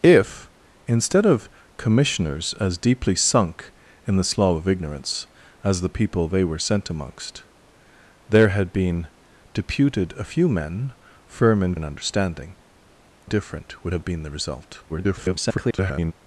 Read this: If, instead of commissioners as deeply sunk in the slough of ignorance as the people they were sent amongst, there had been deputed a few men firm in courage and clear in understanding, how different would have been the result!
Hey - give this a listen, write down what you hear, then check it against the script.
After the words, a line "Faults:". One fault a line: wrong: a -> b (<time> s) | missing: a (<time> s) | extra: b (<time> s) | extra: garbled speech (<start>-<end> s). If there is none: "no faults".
If, instead of commissioners as deeply sunk in the slough of ignorance as the people they were sent amongst, there had been deputed a few men firm in in understanding, different would have been the result! [garbled]
Faults:
missing: courage and clear (11.8 s)
missing: how (12.6 s)
extra: garbled speech (14.9-16.1 s)